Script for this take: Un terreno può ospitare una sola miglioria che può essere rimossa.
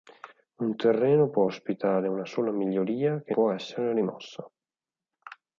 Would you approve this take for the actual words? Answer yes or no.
yes